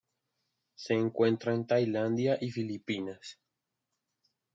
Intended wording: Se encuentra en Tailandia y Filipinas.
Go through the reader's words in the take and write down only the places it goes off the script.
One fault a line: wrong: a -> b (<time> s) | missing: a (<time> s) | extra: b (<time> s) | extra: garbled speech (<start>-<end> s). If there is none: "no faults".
no faults